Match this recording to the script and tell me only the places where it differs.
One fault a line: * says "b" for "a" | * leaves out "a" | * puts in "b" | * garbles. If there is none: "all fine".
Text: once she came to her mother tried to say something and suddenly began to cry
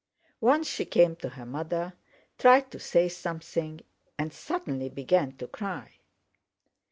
all fine